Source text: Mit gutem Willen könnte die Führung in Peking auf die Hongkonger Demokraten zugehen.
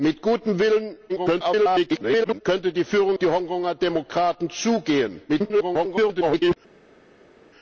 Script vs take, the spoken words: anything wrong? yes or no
yes